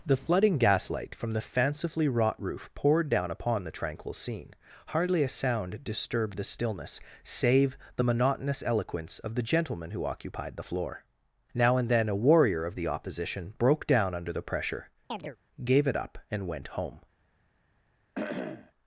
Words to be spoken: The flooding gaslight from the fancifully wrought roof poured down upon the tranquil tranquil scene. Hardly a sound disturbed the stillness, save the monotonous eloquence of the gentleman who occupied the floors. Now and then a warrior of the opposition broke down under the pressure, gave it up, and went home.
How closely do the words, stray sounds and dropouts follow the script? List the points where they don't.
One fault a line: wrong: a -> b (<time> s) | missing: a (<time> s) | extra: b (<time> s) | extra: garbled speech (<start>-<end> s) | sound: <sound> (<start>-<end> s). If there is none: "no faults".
missing: tranquil (4.1 s)
wrong: floors -> floor (10.6 s)
sound: chirp (15.1-15.4 s)
sound: cough (18.1-18.7 s)